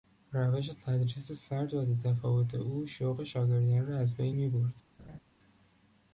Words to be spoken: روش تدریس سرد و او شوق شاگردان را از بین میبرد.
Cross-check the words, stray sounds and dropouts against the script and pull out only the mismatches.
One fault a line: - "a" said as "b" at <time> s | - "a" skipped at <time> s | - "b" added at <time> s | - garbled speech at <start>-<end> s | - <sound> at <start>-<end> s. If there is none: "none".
- "بیتفاوت" added at 1.9 s
- laugh at 5.0-5.2 s